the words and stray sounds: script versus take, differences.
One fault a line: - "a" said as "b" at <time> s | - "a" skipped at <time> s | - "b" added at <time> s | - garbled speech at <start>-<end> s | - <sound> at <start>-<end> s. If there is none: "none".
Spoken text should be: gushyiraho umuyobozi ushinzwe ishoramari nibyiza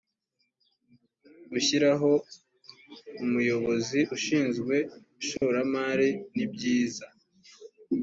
- dropout at 5.4-5.4 s